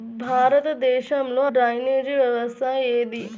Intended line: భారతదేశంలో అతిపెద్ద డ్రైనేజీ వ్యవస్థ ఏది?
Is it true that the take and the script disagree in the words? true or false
true